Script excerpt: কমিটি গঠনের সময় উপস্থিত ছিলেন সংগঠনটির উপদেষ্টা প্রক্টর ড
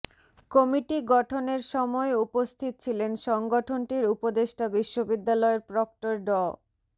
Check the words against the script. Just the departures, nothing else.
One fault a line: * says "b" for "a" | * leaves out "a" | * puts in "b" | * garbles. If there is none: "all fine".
* puts in "বিশ্ববিদ্যালয়ের"